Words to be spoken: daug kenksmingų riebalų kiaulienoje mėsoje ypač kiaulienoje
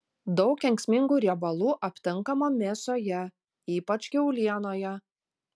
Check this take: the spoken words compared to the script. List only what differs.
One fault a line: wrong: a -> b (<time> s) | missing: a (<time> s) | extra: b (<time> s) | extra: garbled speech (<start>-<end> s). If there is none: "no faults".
wrong: kiaulienoje -> aptinkama (1.9 s)